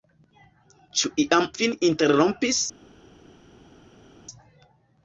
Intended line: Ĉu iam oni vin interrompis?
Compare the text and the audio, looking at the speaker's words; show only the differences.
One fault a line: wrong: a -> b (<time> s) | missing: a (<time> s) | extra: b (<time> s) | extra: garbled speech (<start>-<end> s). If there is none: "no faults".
missing: oni (1.4 s)